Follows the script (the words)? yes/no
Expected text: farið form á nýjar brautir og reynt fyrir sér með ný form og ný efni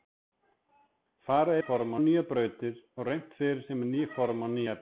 yes